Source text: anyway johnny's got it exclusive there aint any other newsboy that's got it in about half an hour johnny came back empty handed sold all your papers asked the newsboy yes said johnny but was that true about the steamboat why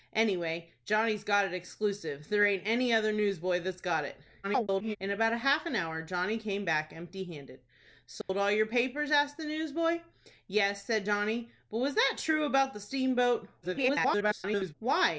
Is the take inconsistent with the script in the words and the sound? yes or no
yes